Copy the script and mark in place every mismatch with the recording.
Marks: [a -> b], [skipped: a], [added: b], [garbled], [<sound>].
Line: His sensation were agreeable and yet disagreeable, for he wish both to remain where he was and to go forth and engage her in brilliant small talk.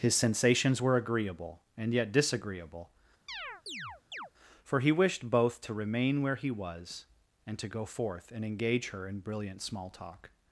His [sensation -> sensations] were agreeable and yet disagreeable, [chirp] for he [wish -> wished] both to remain where he was and to go forth and engage her in brilliant small talk.